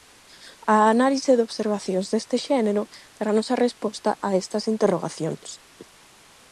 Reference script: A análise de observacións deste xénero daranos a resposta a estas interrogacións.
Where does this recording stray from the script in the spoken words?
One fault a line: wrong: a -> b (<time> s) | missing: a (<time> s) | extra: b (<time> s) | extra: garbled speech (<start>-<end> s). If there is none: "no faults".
no faults